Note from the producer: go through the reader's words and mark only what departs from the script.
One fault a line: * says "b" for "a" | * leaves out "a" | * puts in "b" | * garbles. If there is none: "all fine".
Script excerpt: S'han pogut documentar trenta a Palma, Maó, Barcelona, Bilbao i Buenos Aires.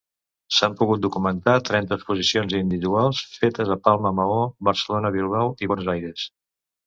* puts in "exposicions individuals fetes"